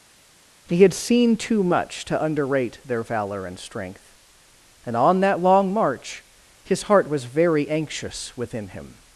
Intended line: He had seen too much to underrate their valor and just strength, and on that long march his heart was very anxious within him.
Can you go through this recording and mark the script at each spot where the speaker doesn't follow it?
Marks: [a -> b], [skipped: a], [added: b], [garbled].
He had seen too much to underrate their valor and [skipped: just] strength, and on that long march his heart was very anxious within him.